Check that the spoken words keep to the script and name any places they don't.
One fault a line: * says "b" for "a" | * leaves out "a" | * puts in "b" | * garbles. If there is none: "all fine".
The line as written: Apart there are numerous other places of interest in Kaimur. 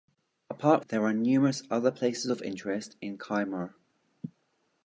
all fine